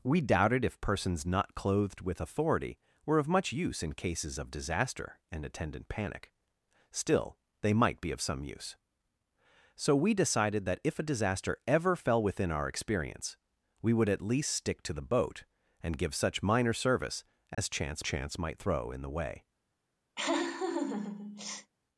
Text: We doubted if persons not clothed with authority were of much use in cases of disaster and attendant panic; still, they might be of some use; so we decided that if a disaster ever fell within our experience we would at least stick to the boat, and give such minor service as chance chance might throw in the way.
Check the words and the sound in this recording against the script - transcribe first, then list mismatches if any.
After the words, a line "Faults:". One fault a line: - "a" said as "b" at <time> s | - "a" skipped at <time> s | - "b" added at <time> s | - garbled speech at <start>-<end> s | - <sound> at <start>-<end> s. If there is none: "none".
We doubted if persons not clothed with authority were of much use in cases of disaster and attendant panic; still, they might be of some use; so we decided that if a disaster ever fell within our experience we would at least stick to the boat, and give such minor service as chance chance might throw in the way.
Faults:
- dropout at 17.5-17.6 s
- laugh at 20.2-21.7 s